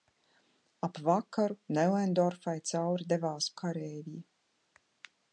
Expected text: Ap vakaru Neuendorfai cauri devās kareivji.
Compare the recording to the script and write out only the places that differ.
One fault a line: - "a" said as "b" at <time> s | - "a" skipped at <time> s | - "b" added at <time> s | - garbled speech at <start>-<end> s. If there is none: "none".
none